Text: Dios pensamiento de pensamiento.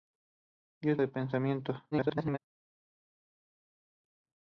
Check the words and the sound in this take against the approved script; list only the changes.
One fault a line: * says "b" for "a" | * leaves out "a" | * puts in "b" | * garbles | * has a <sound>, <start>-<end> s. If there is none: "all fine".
* leaves out "pensamiento"
* garbles